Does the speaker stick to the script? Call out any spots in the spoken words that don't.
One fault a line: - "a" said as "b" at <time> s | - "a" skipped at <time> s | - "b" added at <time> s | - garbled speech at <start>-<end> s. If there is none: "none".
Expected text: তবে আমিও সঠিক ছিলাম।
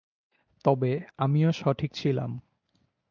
none